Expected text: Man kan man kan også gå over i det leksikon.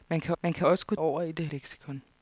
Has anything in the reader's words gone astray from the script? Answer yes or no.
no